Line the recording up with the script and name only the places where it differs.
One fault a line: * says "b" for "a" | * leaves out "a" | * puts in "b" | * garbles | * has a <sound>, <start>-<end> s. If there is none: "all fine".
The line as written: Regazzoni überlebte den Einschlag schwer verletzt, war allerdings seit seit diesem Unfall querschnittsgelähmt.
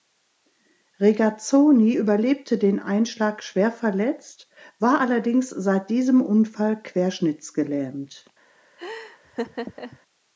* leaves out "seit"
* has a laugh, 8.8-10.0 s